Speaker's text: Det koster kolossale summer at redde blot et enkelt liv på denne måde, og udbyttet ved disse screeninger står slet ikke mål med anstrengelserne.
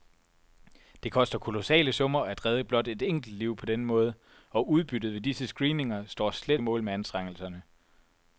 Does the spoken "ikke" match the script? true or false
false